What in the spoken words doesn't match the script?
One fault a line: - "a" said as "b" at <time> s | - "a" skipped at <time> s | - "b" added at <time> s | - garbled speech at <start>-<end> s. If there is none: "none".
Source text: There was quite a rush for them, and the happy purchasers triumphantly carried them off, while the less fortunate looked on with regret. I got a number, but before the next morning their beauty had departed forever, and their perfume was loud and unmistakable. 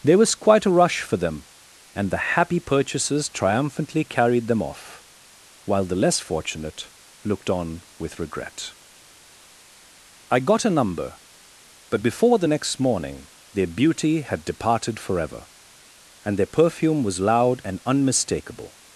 none